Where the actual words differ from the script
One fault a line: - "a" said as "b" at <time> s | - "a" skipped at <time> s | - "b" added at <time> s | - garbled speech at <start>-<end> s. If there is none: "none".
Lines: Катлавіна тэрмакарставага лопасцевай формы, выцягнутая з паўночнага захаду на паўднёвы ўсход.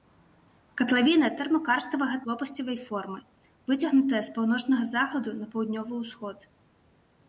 none